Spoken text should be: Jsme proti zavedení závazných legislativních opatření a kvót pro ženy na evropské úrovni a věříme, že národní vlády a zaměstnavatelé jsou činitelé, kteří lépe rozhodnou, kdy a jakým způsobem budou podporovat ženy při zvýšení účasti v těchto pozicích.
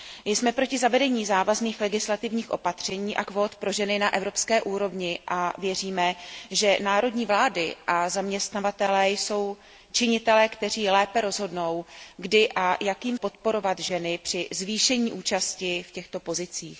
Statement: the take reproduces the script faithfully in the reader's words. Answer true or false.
false